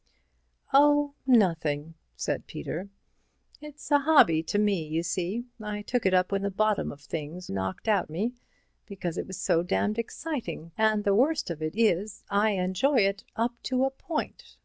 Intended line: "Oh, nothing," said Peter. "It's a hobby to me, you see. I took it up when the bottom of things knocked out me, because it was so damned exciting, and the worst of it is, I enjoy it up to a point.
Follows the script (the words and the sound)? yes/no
yes